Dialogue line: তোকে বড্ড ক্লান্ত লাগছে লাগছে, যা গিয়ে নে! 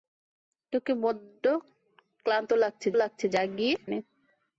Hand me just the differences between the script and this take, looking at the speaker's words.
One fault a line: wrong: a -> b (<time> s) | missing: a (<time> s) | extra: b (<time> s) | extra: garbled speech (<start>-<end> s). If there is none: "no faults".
no faults